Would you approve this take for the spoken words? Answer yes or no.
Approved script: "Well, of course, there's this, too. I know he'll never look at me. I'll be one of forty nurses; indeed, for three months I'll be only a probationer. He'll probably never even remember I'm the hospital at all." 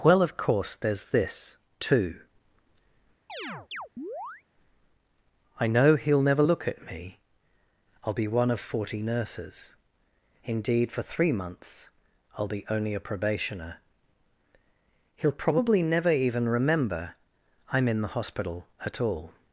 no